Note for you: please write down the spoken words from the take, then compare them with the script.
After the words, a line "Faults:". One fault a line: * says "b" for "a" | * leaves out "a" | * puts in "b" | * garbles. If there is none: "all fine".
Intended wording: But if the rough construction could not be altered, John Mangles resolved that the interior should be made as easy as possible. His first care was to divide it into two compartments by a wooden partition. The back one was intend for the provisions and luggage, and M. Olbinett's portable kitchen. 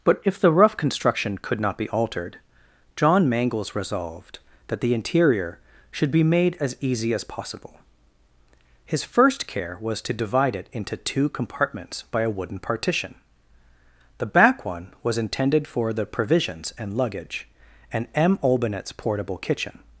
But if the rough construction could not be altered, John Mangles resolved that the interior should be made as easy as possible. His first care was to divide it into two compartments by a wooden partition. The back one was intended for the provisions and luggage, and M. Olbinett's portable kitchen.
Faults:
* says "intended" for "intend"